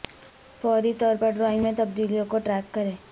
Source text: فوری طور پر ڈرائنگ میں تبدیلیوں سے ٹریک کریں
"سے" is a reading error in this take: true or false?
true